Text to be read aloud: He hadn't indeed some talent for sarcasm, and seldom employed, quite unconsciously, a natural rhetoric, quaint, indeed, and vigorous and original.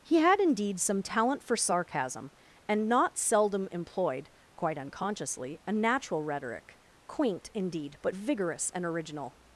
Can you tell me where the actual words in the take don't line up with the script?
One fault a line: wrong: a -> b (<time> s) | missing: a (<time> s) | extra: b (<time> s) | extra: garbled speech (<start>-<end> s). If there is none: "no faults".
wrong: hadn't -> had (0.2 s)
extra: not (2.9 s)
wrong: and -> but (8.0 s)